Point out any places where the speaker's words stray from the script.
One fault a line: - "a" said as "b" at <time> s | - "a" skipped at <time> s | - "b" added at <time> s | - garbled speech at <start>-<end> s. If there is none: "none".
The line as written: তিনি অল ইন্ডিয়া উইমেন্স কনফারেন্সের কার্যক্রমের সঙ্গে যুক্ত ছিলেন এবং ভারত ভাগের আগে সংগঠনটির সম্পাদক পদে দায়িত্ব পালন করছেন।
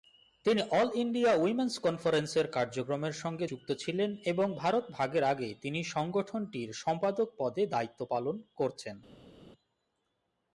- "তিনি" added at 5.6 s